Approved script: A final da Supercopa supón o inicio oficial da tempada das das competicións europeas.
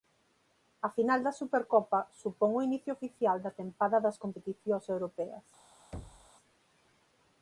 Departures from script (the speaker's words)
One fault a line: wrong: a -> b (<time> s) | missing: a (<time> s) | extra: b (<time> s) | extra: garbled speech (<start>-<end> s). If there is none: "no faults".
missing: das (4.2 s)